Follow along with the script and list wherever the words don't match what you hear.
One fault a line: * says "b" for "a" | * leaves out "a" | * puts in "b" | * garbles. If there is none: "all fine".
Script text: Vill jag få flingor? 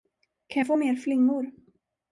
* says "Kan" for "Vill"
* puts in "mer"